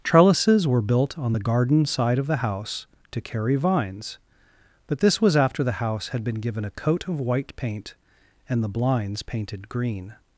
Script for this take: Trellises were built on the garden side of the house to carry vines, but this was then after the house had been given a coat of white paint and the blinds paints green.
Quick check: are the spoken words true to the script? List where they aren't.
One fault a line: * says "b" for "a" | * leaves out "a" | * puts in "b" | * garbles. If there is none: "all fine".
* leaves out "then"
* says "painted" for "paints"